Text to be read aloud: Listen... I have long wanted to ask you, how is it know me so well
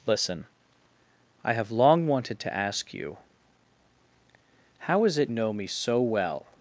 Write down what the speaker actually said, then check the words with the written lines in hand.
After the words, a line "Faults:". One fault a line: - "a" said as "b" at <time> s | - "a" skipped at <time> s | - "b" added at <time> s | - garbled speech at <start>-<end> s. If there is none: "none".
Listen... I have long wanted to ask you, how is it know me so well
Faults:
none